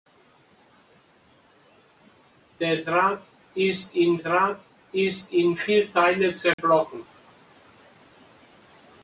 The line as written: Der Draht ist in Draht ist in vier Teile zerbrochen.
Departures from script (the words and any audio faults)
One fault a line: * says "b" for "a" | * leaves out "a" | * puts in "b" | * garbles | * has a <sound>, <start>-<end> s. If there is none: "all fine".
* has a dropout, 6.5-6.6 s